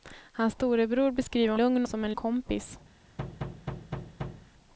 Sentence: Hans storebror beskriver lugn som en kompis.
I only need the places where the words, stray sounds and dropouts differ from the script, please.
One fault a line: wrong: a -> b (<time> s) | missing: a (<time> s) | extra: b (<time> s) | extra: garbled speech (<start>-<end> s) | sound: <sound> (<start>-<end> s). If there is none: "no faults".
sound: thud (3.2-4.5 s)